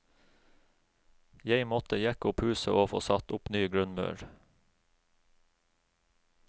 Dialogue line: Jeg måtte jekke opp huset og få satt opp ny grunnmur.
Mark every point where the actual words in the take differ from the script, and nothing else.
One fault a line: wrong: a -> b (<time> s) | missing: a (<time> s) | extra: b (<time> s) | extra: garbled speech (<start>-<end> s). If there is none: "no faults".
no faults